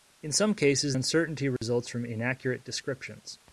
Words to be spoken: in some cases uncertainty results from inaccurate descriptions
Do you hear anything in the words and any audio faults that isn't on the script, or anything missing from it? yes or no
yes